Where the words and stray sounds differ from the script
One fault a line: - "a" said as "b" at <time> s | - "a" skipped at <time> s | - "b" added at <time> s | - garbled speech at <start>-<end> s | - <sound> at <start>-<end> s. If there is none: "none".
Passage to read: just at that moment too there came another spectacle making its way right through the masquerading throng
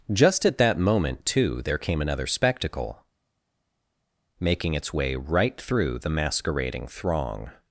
none